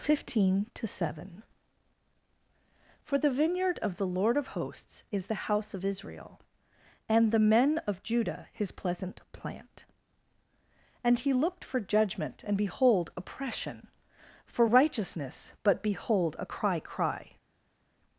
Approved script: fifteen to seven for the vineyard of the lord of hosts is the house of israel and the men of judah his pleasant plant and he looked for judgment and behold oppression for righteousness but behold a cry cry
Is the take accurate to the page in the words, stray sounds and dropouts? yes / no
yes